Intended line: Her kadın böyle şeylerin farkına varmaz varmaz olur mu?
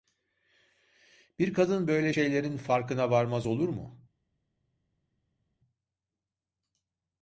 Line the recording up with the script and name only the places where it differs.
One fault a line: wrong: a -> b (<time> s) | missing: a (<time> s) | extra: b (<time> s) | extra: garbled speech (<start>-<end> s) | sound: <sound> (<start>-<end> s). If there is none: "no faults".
wrong: Her -> Bir (1.4 s)
missing: varmaz (3.5 s)